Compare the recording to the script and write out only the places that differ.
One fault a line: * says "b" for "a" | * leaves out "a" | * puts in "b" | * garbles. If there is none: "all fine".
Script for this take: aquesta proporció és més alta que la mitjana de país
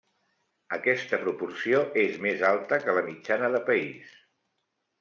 all fine